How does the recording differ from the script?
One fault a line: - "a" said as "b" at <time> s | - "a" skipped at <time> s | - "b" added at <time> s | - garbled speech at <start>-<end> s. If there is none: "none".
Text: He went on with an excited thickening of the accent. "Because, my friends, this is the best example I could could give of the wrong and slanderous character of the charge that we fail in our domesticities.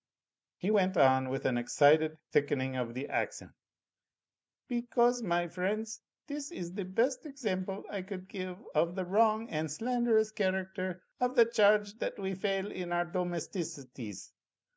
- "could" skipped at 8.3 s